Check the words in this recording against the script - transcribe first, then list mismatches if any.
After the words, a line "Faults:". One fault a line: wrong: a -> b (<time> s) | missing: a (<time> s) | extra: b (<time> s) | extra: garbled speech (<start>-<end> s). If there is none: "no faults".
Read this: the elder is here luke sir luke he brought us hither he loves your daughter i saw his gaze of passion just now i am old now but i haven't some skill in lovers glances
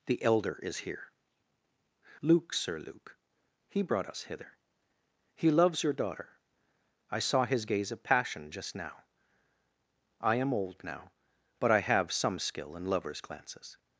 the elder is here luke sir luke he brought us hither he loves your daughter i saw his gaze of passion just now i am old now but i have some skill in lovers glances
Faults:
wrong: haven't -> have (11.8 s)